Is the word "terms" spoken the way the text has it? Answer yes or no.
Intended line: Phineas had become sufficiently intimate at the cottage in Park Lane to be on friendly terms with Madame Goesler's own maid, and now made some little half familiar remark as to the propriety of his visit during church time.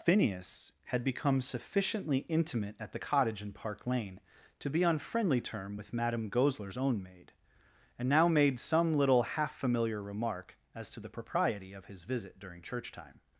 no